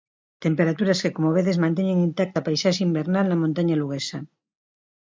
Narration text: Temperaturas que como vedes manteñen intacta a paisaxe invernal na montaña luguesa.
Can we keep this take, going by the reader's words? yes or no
yes